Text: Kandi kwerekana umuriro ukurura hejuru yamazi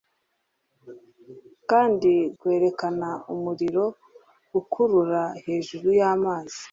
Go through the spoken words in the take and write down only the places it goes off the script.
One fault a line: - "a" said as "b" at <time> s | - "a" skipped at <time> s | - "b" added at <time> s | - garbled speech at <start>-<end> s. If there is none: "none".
none